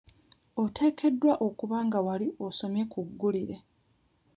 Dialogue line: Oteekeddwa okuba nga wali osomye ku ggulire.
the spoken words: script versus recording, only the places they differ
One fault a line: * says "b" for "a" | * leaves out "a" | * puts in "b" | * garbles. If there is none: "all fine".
all fine